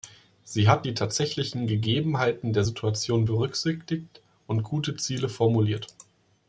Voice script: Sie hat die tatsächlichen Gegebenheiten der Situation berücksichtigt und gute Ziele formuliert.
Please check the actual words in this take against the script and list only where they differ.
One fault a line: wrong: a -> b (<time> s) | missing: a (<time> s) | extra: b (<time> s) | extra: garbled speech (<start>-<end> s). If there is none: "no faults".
no faults